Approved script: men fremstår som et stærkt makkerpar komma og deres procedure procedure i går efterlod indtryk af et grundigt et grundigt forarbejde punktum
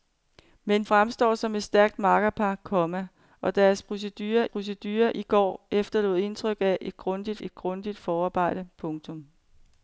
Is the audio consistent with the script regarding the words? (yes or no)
yes